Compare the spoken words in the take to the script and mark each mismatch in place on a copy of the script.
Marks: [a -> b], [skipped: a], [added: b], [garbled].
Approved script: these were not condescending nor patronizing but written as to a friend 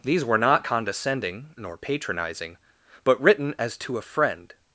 these were not condescending nor patronizing but written as to a friend